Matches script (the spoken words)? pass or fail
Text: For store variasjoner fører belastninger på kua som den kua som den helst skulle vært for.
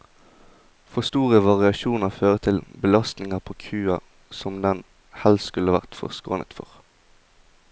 fail